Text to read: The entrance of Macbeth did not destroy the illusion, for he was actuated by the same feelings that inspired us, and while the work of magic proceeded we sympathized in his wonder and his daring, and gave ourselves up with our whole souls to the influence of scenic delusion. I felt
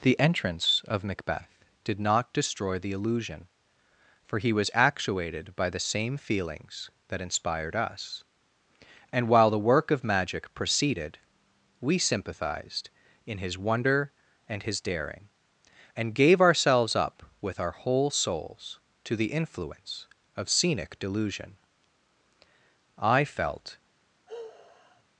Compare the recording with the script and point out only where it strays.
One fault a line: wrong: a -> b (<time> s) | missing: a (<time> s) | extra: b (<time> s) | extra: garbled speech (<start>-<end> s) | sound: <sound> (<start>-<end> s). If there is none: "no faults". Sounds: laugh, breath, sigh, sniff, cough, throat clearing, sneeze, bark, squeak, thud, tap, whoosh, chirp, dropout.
sound: sigh (24.3-25.0 s)